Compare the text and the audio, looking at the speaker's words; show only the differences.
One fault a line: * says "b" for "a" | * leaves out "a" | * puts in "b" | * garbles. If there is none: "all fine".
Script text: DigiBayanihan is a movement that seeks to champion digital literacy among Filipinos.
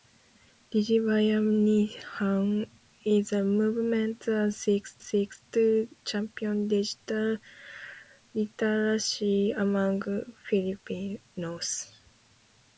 * puts in "seeks"